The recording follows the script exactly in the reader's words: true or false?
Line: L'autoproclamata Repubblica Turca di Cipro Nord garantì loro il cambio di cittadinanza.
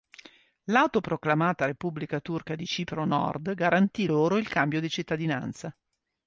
true